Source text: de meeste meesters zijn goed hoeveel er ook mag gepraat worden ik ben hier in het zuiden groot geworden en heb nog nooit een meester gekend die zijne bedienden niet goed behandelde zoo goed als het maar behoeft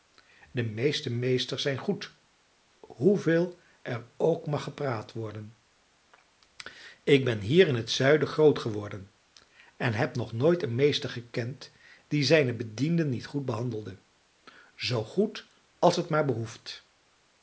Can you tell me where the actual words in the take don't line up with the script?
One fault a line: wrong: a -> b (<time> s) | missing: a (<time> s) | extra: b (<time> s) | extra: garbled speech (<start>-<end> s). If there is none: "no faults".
no faults